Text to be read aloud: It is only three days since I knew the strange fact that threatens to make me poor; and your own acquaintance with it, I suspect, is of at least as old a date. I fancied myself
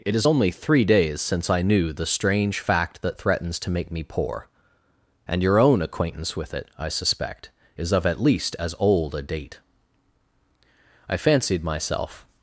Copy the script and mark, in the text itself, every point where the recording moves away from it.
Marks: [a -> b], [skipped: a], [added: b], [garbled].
It is only three days since I knew the strange fact that threatens to make me poor; and your own acquaintance with it, I suspect, is of at least as old a date. I fancied myself